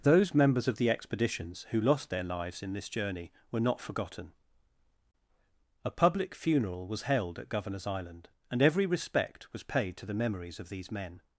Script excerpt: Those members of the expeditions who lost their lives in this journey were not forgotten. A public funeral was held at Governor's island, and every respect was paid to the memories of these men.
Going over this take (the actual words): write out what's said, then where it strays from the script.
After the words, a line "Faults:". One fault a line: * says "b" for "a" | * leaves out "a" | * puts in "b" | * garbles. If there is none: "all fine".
Those members of the expeditions who lost their lives in this journey were not forgotten. A public funeral was held at Governor's island, and every respect was paid to the memories of these men.
Faults:
all fine